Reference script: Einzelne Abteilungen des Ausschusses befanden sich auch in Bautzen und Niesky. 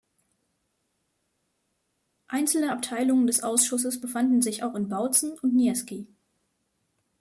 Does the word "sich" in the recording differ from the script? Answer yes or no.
no